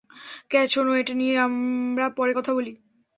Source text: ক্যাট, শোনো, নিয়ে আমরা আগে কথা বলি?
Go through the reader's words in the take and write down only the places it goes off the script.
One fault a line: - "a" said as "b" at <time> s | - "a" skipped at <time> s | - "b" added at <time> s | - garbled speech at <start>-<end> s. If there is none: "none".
- "এটা" added at 1.0 s
- "আগে" said as "পরে" at 2.2 s